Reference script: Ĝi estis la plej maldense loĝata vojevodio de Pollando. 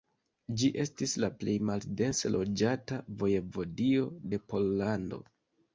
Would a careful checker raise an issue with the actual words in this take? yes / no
no